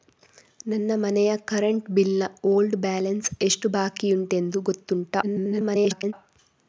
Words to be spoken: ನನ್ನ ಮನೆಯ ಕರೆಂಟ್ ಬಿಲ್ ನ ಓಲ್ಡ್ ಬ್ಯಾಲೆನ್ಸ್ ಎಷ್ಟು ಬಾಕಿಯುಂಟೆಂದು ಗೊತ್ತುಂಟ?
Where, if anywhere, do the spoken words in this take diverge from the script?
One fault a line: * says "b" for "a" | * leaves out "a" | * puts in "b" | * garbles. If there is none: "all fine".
* garbles